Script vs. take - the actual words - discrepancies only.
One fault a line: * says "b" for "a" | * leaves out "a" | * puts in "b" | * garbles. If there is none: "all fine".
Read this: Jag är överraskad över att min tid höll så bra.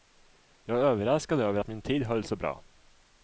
all fine